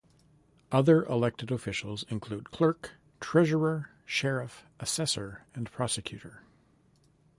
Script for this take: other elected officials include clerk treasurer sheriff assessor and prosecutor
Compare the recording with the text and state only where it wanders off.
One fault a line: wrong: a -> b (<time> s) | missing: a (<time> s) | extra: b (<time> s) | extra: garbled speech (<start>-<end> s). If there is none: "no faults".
no faults